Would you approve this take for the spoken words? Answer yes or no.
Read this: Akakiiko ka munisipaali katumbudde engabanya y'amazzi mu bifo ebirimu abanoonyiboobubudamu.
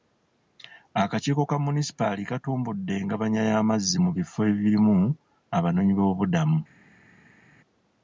yes